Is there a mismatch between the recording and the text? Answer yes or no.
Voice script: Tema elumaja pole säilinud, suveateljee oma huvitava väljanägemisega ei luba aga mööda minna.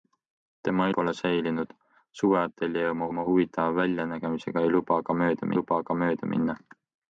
yes